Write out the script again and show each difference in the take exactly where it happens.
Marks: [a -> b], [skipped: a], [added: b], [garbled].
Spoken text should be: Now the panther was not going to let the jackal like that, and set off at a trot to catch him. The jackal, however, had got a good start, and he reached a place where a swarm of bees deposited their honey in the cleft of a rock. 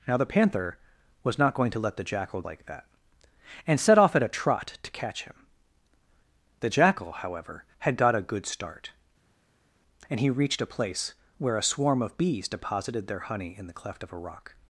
Now the panther was not going to let the jackal like that, and set off at a trot to catch him. The jackal, however, had got a good start, and he reached a place where a swarm of bees deposited their honey in the cleft of a rock.